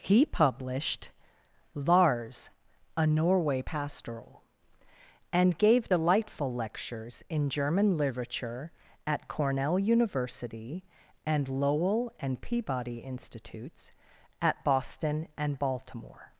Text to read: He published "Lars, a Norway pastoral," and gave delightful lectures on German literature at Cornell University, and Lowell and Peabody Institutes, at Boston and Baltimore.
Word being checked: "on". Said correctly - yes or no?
no